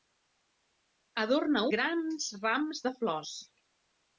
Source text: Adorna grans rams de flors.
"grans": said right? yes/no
yes